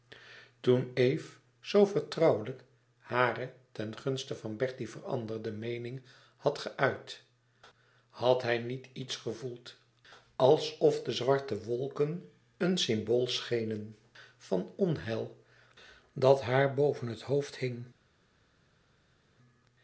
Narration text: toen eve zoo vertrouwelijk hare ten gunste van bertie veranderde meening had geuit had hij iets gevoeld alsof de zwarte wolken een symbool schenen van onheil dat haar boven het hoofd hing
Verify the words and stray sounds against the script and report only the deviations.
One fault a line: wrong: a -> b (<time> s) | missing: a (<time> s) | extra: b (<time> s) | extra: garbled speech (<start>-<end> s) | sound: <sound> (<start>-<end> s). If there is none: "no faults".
extra: niet (8.6 s)